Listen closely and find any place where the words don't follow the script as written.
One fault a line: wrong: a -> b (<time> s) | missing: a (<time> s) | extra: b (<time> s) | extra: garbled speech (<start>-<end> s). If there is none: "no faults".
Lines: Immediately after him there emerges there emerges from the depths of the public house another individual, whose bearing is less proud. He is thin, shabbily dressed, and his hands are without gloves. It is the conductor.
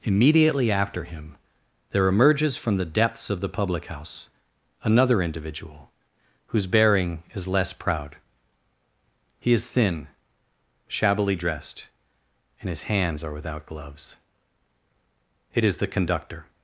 missing: there emerges (2.6 s)